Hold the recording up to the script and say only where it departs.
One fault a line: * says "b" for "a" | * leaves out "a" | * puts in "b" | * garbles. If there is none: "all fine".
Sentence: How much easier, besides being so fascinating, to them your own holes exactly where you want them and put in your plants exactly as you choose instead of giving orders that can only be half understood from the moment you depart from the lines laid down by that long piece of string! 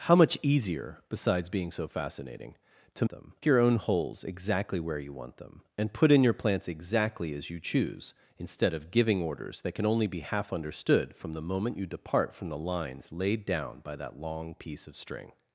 all fine